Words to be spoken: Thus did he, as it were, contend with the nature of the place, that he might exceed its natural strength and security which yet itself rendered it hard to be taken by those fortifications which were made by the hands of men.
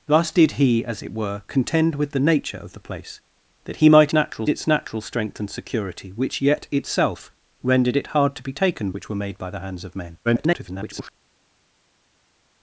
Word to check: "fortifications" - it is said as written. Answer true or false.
false